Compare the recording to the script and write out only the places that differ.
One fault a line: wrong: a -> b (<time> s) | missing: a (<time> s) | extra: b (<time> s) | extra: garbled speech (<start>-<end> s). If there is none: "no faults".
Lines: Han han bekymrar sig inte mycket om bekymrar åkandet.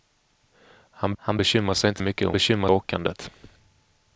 no faults